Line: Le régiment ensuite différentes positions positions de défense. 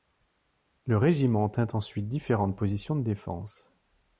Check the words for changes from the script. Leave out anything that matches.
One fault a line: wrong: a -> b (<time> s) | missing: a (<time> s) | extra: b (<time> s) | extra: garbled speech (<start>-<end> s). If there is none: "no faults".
extra: tint (1.5 s)
missing: positions (3.0 s)